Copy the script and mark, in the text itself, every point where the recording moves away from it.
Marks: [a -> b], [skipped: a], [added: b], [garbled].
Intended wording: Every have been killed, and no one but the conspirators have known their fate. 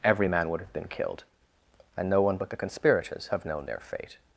Every [added: man would] have been killed, and no one but the conspirators have known their fate.